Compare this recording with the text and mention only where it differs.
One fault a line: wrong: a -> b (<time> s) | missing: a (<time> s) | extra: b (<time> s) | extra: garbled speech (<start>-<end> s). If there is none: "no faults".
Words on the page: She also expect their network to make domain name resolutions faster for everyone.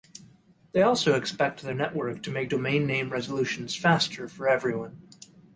wrong: She -> They (0.7 s)